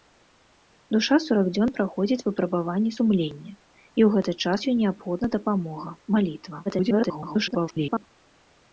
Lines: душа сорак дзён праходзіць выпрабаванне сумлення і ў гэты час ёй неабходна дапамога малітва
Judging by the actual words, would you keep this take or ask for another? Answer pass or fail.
fail